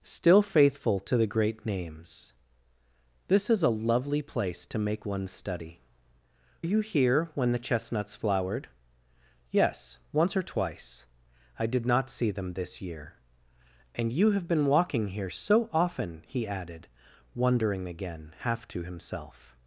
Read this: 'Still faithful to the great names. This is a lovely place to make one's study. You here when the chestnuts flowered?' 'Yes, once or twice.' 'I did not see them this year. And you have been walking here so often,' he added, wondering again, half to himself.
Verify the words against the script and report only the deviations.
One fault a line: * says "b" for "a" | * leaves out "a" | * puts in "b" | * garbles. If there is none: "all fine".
all fine